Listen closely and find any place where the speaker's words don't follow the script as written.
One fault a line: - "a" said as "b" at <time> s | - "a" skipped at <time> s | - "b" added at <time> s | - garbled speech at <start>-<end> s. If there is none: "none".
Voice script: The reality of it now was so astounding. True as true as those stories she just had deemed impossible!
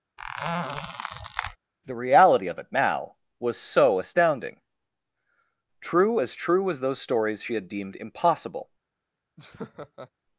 - "just" skipped at 7.5 s